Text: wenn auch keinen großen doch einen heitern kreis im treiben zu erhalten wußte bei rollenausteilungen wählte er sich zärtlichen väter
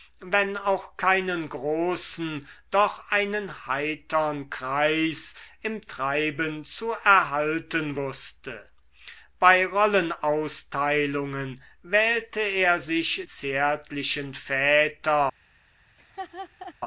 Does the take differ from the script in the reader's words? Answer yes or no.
no